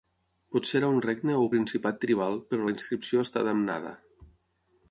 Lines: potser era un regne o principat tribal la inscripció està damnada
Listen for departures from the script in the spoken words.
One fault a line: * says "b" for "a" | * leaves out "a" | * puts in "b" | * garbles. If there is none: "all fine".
* puts in "però"